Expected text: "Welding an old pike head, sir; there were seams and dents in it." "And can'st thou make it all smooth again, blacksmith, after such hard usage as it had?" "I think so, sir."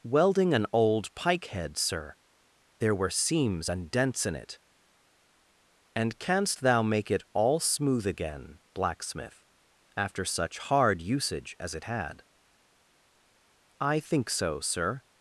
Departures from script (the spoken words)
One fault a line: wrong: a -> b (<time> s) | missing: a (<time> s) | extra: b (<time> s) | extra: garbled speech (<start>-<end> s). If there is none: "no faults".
no faults